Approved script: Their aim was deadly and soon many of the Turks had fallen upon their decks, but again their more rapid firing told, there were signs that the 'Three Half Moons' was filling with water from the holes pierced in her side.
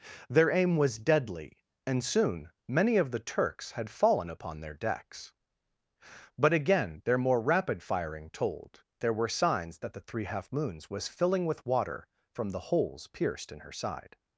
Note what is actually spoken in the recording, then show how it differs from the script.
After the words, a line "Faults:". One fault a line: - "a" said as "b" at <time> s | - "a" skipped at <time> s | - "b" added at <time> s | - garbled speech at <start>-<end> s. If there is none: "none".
Their aim was deadly and soon many of the Turks had fallen upon their decks, but again their more rapid firing told, there were signs that the 'Three Half Moons' was filling with water from the holes pierced in her side.
Faults:
none